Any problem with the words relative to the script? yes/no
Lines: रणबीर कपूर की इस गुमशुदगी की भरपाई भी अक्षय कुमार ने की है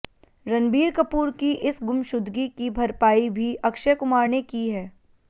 no